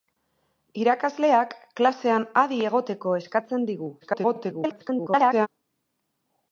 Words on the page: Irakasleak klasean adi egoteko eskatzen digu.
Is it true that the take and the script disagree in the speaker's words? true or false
true